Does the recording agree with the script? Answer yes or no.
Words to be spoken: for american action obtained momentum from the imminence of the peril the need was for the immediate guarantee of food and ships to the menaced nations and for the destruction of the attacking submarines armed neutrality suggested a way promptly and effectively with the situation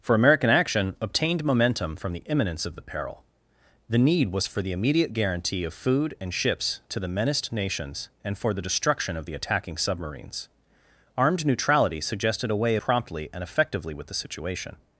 yes